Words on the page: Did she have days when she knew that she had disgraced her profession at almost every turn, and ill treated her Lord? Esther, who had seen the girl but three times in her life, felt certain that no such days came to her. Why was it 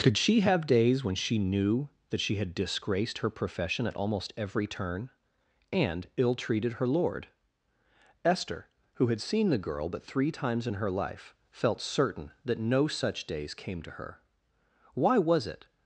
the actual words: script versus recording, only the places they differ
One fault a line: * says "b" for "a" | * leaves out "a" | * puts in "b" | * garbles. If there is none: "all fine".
* says "Could" for "Did"